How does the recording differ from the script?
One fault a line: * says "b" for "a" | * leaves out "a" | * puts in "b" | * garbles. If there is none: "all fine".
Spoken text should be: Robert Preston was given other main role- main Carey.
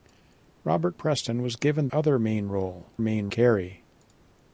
all fine